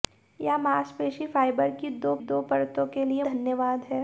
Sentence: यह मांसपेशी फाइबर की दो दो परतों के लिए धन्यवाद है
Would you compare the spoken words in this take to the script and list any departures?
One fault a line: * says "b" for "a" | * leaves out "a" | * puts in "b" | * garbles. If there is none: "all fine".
all fine